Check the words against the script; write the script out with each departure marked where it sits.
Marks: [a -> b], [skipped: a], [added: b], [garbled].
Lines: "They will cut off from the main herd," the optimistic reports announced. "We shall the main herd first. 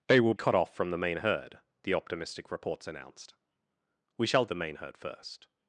"They will cut off from the main herd," the optimistic reports announced. "We shall the main herd first.